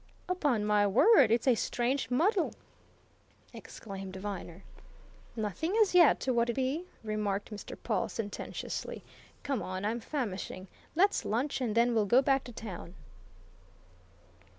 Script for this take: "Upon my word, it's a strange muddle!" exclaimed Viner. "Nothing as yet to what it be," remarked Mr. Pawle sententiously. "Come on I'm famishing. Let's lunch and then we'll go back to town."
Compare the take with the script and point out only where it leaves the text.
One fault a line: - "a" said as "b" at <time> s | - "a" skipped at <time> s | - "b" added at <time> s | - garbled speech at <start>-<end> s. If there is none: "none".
none